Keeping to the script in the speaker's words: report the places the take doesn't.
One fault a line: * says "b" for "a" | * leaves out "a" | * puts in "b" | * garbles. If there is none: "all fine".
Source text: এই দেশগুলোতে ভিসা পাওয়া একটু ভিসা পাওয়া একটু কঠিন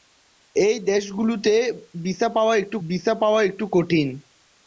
all fine